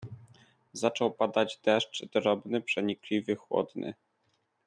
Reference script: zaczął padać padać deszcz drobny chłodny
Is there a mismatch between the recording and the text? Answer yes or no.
yes